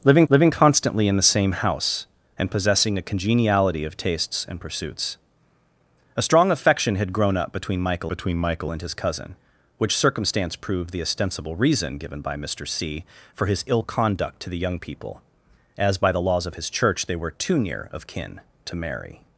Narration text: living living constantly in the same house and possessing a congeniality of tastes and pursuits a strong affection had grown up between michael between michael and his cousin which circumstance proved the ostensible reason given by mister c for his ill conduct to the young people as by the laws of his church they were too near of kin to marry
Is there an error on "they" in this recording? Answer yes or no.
no